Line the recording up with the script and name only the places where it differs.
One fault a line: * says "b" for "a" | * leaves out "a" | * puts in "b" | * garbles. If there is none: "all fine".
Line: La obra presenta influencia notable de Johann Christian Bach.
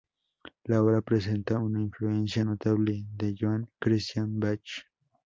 * puts in "una"